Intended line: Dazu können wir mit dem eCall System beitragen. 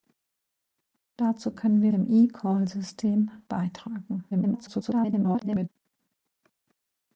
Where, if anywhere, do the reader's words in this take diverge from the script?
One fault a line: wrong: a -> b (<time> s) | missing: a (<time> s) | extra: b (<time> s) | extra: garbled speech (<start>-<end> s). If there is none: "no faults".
missing: mit (1.9 s)
extra: garbled speech (4.3-5.7 s)